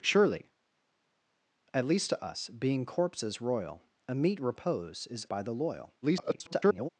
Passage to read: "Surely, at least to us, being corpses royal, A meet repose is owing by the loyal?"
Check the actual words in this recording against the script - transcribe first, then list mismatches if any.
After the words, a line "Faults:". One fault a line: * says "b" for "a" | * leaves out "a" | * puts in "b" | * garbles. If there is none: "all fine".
"Surely, at least to us, being corpses royal, A meet repose is by the loyal?" [garbled]
Faults:
* leaves out "owing"
* garbles